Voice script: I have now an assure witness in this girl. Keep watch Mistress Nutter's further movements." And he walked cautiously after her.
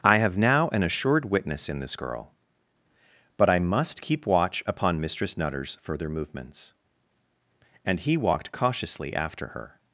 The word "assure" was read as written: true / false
false